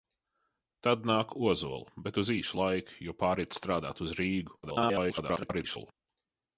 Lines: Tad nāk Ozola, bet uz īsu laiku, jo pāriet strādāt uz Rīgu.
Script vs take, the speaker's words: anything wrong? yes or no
yes